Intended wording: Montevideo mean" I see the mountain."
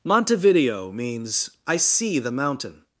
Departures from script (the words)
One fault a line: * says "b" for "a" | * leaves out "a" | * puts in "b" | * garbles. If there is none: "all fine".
* says "means" for "mean"